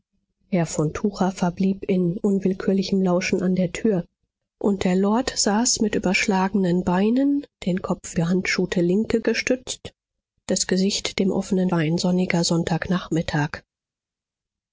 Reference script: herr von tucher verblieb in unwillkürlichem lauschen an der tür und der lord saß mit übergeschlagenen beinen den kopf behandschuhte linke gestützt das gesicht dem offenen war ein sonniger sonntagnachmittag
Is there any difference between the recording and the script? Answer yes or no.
no